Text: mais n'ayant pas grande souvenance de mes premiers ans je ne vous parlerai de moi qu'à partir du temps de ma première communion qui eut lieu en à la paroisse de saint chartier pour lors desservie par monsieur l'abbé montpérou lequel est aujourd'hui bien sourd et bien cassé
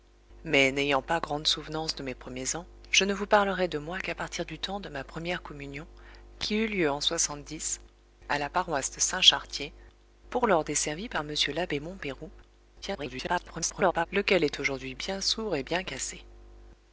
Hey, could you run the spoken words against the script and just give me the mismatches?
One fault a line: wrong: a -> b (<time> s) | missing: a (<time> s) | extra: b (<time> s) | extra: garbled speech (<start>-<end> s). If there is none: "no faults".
extra: garbled speech (12.8-14.1 s)